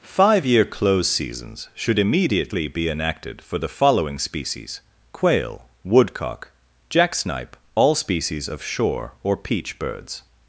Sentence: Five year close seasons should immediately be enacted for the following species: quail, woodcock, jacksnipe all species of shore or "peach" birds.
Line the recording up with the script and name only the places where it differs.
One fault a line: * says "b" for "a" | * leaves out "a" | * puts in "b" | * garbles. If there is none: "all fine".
all fine